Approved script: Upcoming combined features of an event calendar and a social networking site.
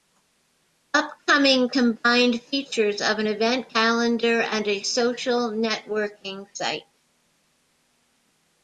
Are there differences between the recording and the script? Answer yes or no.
no